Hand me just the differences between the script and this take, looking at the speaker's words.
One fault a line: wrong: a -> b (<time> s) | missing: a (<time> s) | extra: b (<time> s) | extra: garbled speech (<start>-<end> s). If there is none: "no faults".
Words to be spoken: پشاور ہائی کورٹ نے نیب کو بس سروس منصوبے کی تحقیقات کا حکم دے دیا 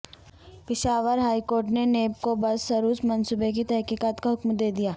no faults